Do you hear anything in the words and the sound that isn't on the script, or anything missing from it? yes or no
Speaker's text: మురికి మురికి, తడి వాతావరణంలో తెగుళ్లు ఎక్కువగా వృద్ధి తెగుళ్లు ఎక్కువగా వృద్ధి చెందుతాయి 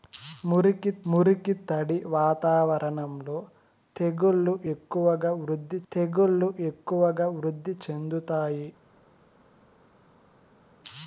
no